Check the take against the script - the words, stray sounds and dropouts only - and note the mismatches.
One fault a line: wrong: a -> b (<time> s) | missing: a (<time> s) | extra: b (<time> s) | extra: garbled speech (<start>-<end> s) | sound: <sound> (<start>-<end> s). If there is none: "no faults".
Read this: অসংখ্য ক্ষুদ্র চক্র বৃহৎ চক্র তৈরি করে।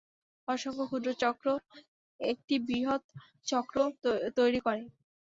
extra: একটি (2.2 s)